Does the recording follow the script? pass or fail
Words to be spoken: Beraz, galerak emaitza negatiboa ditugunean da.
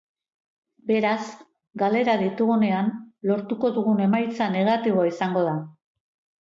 fail